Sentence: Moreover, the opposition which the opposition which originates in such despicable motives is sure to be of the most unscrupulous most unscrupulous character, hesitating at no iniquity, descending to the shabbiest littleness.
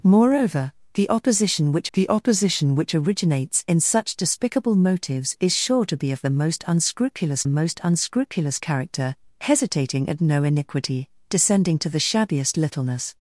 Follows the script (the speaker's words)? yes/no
yes